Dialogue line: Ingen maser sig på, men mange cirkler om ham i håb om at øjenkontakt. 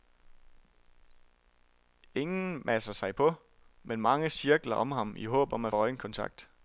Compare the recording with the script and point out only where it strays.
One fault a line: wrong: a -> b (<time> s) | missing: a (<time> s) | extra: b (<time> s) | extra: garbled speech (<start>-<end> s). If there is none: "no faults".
no faults